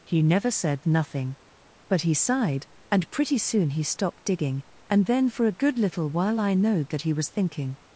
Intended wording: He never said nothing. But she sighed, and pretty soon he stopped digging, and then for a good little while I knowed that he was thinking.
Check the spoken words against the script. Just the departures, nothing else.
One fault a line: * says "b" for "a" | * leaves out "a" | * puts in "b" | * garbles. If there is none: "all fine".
* says "he" for "she"